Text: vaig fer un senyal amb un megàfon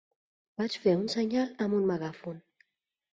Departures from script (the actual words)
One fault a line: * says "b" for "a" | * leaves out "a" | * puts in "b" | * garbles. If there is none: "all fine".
all fine